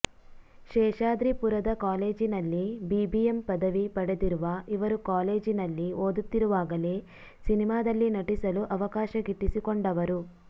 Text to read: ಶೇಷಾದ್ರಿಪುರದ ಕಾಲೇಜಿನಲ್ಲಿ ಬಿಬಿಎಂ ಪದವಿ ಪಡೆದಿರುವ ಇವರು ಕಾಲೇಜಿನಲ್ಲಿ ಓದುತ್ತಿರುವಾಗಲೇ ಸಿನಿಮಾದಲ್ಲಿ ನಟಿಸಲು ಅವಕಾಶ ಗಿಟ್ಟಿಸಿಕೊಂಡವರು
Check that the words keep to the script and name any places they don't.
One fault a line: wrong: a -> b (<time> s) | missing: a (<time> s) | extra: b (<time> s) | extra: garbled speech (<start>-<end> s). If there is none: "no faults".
no faults